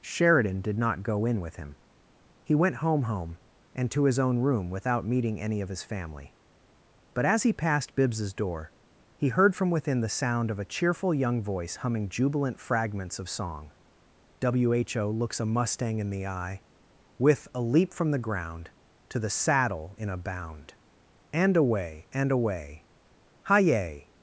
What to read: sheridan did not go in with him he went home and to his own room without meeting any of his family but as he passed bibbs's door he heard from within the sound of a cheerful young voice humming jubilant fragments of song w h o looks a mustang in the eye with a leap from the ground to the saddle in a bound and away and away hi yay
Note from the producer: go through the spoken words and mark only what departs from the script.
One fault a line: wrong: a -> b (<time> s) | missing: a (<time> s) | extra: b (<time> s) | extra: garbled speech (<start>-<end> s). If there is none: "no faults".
extra: home (3.0 s)